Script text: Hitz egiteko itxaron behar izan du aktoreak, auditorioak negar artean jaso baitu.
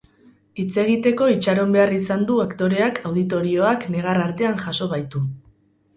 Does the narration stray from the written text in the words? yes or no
no